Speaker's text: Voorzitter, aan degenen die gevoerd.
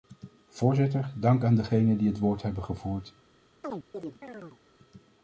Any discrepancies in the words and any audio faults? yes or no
yes